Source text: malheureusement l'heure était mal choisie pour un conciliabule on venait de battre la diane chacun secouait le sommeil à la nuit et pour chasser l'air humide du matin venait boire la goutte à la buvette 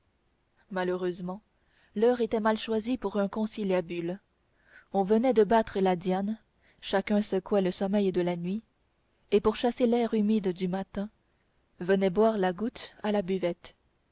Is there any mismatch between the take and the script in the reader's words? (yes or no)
yes